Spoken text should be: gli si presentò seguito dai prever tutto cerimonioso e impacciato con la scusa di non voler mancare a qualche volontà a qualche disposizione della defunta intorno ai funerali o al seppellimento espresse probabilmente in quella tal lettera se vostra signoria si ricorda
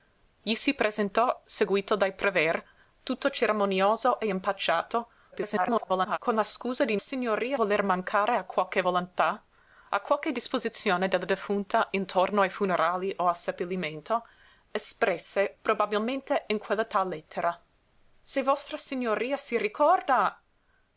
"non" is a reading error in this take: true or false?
true